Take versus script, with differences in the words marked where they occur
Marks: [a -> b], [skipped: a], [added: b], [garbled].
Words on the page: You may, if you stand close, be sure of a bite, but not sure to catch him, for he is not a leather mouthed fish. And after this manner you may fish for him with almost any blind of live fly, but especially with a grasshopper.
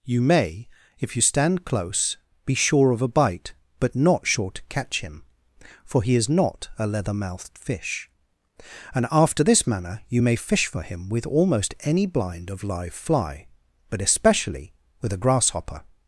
You may, if you stand close, be sure of a bite, but not sure to catch him, for he is not a leather mouthed fish. And after this manner you may fish for him with almost any blind of live fly, but especially with a grasshopper.